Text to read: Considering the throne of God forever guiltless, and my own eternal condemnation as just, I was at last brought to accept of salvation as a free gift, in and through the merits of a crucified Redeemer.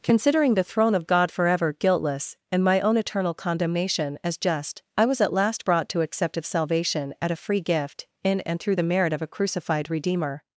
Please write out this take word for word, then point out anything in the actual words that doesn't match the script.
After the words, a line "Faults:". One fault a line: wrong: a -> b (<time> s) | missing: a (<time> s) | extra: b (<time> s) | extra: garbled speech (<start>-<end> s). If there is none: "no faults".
Considering the throne of God forever guiltless, and my own eternal condemnation as just, I was at last brought to accept of salvation at a free gift, in and through the merit of a crucified Redeemer.
Faults:
wrong: as -> at (7.2 s)
wrong: merits -> merit (8.8 s)